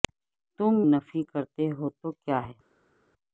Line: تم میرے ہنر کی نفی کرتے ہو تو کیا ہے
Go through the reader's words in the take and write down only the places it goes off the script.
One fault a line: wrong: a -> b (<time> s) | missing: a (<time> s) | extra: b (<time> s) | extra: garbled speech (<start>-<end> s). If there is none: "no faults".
missing: میرے ہنر کی (0.7 s)